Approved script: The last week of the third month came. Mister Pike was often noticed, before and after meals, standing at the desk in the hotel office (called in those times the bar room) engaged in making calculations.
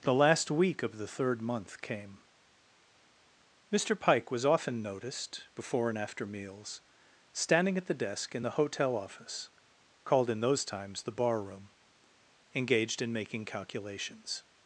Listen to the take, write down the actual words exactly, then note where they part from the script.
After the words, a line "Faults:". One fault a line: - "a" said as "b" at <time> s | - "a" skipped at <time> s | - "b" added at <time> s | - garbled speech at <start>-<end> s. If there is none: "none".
The last week of the third month came. Mister Pike was often noticed, before and after meals, standing at the desk in the hotel office (called in those times the bar room) engaged in making calculations.
Faults:
none